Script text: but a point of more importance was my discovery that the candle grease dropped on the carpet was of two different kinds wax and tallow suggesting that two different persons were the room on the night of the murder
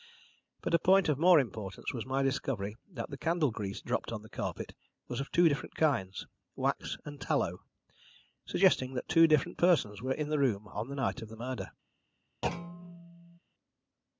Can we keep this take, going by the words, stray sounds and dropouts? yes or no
no